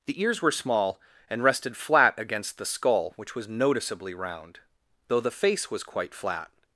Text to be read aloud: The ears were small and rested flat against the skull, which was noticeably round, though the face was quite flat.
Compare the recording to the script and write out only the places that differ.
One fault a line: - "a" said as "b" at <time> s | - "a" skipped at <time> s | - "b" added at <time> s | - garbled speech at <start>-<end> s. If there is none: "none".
none